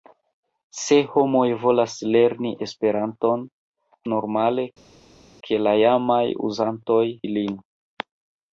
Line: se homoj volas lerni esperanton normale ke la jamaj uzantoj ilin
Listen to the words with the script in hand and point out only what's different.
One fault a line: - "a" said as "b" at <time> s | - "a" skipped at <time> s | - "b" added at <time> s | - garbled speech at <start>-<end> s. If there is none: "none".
none